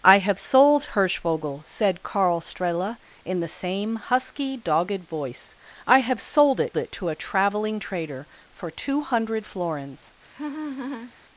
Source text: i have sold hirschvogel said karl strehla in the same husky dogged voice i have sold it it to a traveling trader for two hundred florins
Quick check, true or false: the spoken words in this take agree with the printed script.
true